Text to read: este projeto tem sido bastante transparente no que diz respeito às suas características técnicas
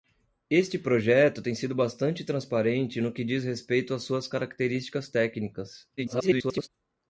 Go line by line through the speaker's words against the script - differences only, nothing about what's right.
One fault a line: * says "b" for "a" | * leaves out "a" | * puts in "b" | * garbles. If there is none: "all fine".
* garbles